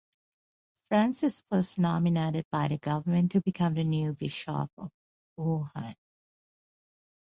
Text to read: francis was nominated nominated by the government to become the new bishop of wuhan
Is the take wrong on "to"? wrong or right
right